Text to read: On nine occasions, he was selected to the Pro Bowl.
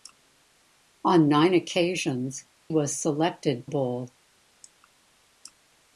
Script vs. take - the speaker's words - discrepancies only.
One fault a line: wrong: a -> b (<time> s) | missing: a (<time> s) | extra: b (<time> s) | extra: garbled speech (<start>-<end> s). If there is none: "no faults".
missing: he (2.5 s)
missing: to the Pro (3.7 s)